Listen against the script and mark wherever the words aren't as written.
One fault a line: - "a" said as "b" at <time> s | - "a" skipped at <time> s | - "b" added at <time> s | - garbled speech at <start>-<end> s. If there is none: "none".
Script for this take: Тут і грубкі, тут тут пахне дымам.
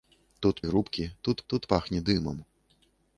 none